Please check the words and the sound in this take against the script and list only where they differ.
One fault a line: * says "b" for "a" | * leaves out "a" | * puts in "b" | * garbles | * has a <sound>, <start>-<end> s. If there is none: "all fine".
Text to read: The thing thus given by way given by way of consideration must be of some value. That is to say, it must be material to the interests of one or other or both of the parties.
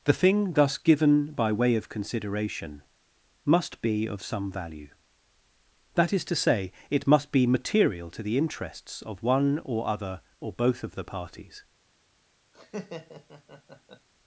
* leaves out "given by way"
* has a laugh, 12.5-14.1 s